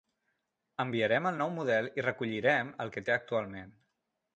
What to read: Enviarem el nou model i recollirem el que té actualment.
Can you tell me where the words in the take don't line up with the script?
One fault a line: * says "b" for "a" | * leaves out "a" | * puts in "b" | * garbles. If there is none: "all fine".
all fine